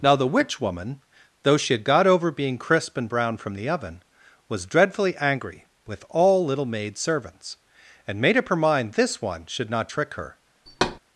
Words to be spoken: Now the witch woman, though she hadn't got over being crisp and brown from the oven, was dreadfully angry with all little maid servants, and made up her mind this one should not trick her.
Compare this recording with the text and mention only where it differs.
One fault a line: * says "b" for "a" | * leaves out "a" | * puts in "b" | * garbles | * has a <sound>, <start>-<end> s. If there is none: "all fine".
* says "had" for "hadn't"
* has a thud, 10.7-11.0 s